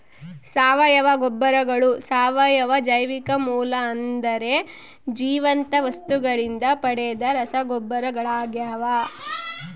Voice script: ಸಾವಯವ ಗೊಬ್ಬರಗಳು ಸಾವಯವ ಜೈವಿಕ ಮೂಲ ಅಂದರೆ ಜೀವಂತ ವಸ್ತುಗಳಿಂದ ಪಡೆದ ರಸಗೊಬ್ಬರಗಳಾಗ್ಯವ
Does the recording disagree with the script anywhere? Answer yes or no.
no